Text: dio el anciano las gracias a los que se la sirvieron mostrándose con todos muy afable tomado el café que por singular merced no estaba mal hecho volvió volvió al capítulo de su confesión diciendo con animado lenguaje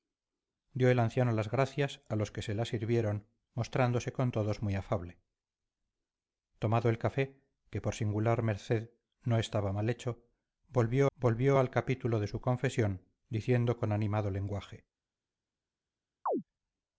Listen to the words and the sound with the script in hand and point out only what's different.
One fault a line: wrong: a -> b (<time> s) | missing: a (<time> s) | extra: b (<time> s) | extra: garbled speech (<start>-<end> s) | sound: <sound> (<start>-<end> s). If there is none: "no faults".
sound: chirp (16.3-16.4 s)